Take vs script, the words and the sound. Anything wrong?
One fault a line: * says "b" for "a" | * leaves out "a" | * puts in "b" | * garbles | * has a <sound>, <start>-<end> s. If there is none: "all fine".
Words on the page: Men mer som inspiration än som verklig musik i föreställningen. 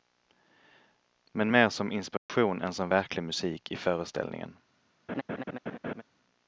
* has a dropout, 2.2-2.3 s
* has a laugh, 5.1-6.0 s